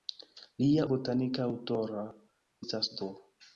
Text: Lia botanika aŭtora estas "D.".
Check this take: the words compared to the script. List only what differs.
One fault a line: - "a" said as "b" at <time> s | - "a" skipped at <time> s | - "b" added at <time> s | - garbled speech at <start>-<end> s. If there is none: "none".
none